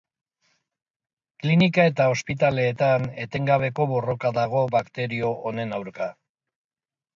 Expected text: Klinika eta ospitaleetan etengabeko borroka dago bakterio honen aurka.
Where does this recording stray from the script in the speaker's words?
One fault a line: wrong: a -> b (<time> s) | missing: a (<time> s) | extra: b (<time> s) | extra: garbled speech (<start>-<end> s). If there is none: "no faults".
no faults